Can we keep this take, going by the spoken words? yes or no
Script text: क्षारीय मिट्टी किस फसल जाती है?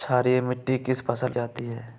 yes